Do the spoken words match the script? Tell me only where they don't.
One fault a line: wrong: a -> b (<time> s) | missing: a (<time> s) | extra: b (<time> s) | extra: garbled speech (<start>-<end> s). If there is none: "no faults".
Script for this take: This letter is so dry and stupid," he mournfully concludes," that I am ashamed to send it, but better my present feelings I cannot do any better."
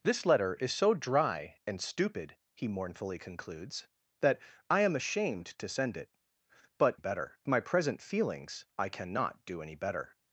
no faults